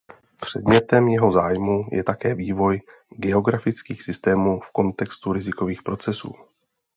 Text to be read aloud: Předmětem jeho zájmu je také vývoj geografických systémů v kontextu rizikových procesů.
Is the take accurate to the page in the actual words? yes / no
yes